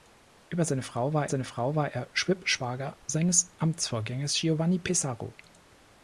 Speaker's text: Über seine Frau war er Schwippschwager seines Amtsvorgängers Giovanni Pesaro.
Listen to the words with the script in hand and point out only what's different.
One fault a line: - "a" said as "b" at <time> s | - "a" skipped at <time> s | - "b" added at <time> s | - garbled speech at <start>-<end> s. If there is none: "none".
- "seine Frau war" added at 1.3 s